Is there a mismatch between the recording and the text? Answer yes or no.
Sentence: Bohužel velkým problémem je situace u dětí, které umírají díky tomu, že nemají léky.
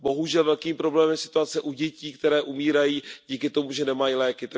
no